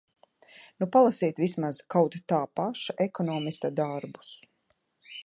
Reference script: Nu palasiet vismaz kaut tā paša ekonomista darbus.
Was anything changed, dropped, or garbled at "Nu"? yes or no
no